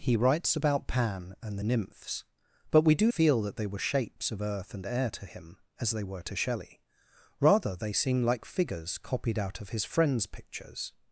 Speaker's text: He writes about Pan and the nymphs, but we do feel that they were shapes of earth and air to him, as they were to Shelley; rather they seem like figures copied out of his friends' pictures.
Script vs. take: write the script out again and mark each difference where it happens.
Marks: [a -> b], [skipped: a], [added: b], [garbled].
He writes about Pan and the nymphs, but we do feel that they were shapes of earth and air to him, as they were to Shelley; rather they seem like figures copied out of his friends' pictures.